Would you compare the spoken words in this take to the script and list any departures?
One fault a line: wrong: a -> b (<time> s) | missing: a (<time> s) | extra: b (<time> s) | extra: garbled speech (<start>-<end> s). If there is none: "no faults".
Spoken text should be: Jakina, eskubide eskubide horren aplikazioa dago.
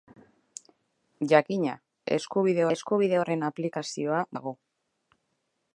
no faults